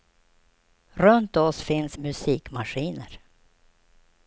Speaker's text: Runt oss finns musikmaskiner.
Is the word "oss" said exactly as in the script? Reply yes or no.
yes